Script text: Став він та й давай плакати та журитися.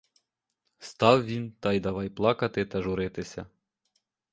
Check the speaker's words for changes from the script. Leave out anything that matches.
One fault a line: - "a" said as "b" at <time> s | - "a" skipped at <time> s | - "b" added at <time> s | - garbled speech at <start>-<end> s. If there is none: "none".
none